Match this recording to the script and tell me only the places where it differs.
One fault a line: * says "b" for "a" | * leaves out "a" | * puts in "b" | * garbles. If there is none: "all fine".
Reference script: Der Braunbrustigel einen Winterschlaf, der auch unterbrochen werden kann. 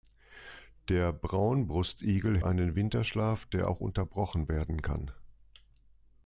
all fine